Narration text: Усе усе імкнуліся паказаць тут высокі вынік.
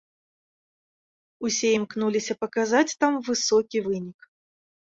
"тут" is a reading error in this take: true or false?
true